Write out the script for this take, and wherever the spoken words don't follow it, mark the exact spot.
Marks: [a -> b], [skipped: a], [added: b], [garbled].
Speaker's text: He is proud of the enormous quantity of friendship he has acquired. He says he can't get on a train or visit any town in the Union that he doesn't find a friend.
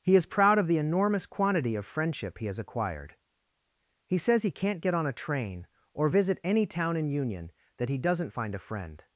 He is proud of the enormous quantity of friendship he has acquired. He says he can't get on a train or visit any town in [skipped: the] Union that he doesn't find a friend.